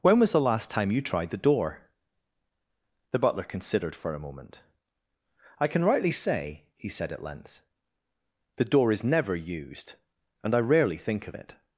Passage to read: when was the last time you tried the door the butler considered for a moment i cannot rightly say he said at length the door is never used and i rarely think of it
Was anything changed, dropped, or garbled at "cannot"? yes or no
yes